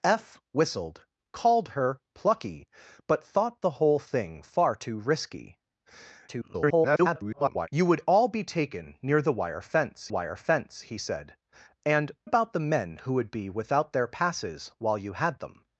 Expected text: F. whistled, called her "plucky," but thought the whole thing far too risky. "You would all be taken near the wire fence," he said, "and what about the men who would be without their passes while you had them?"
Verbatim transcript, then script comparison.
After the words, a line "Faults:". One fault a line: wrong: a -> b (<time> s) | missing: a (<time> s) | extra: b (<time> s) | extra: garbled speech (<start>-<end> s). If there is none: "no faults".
F. whistled, called her "plucky," but thought the whole thing far too risky. [garbled] "You would all be taken near the wire fence wire fence," he said, "and about the men who would be without their passes while you had them?"
Faults:
extra: garbled speech (6.3-7.7 s)
extra: wire fence (10.1 s)
missing: what (12.1 s)